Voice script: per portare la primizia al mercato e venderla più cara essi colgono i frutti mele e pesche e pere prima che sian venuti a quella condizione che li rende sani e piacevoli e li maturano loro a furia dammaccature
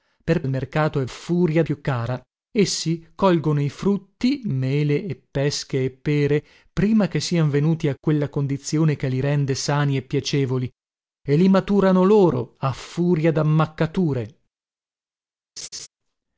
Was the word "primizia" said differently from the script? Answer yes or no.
yes